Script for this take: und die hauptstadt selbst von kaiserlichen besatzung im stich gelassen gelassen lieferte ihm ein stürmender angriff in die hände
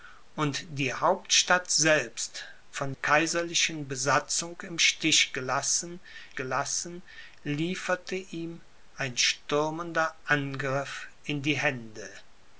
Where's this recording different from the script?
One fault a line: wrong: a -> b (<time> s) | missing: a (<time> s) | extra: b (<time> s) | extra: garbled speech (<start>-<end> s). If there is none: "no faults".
no faults